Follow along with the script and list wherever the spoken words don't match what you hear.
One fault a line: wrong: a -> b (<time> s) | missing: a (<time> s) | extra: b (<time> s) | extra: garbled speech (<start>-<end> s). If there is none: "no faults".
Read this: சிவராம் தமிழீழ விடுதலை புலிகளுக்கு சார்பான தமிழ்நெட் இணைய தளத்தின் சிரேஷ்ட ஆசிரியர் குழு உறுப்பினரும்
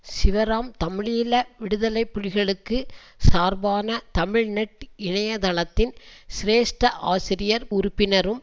missing: குழு (7.7 s)